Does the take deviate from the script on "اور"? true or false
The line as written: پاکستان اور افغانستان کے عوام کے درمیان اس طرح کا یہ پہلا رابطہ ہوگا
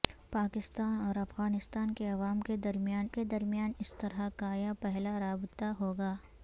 false